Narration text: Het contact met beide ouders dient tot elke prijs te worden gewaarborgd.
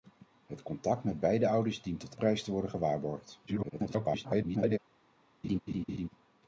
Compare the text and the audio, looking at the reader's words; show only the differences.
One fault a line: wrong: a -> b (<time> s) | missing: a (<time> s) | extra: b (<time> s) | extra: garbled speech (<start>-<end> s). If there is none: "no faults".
missing: elke (2.1 s)
extra: garbled speech (3.5-4.8 s)